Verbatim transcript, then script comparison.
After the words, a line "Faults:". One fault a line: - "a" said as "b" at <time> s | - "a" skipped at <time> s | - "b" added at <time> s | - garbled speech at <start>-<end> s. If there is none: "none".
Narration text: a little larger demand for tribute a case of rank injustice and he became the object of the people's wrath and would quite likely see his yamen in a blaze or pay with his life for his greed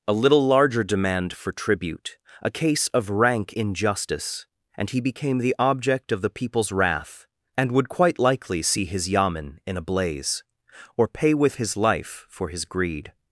a little larger demand for tribute a case of rank injustice and he became the object of the people's wrath and would quite likely see his yamen in a blaze or pay with his life for his greed
Faults:
none